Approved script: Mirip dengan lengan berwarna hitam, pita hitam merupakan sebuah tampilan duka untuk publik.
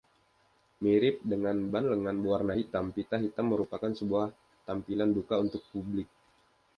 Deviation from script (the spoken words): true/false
true